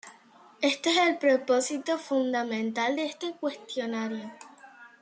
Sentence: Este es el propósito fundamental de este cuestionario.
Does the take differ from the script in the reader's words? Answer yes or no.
no